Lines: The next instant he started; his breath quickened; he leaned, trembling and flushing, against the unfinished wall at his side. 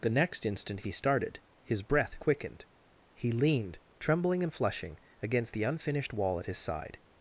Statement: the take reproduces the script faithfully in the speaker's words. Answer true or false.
true